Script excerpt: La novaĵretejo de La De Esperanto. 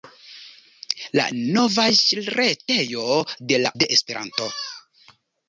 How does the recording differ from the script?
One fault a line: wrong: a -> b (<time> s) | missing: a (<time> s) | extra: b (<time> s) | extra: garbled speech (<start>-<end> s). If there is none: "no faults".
no faults